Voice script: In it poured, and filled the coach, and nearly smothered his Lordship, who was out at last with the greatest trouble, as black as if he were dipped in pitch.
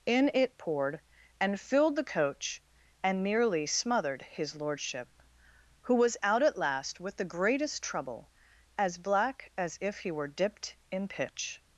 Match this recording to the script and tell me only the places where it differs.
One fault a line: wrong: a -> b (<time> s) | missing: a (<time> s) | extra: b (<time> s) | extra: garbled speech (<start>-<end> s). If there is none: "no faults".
no faults